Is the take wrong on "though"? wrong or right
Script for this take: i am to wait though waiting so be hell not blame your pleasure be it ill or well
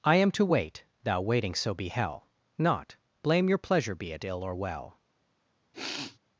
wrong